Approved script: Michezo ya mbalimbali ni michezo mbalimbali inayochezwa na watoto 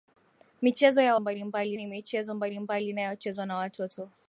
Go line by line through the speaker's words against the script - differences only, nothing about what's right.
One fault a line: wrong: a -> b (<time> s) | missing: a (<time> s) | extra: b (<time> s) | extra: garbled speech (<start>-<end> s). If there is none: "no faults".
no faults